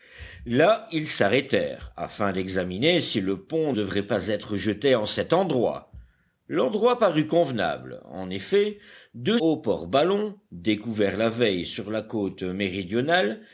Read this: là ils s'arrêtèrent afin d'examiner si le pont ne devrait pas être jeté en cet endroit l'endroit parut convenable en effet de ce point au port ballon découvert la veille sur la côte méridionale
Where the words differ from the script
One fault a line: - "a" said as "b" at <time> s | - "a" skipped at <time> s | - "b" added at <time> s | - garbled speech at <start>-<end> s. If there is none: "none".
- "ne" skipped at 3.7 s
- "ce point" skipped at 9.4 s